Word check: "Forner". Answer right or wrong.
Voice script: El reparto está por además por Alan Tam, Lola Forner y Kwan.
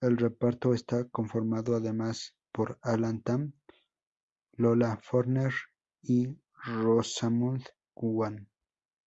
right